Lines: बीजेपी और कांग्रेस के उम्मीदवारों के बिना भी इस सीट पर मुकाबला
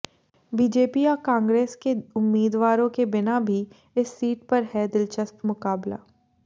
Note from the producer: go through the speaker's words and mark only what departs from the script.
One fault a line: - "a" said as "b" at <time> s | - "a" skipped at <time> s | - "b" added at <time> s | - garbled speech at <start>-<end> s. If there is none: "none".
- "है दिलचस्प" added at 4.7 s